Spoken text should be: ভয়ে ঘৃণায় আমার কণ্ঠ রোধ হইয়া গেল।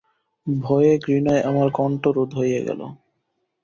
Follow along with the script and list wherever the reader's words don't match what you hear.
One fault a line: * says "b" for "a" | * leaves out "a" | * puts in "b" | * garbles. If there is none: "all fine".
all fine